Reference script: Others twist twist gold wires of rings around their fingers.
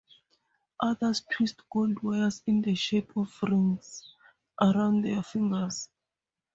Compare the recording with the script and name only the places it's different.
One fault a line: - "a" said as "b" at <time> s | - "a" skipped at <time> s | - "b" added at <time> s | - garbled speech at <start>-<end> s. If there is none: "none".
- "twist" skipped at 1.6 s
- "in the shape" added at 2.5 s